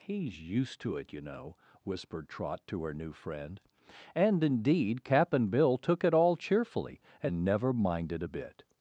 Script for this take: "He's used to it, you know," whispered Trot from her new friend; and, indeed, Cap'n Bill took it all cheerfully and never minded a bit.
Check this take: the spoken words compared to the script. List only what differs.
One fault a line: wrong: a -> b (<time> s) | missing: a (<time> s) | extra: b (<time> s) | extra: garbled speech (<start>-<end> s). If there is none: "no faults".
wrong: from -> to (2.6 s)